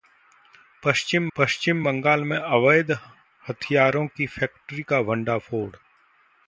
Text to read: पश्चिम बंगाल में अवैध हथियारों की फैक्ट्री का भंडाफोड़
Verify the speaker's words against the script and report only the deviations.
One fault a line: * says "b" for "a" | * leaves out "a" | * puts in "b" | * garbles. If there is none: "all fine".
* puts in "पश्चिम"